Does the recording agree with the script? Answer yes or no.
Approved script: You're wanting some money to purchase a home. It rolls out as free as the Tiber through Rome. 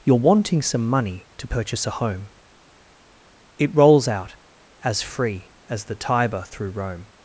yes